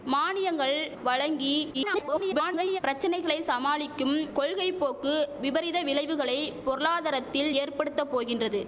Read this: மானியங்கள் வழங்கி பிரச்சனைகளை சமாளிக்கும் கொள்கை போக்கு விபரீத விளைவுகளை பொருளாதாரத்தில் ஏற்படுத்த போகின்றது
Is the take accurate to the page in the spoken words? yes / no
no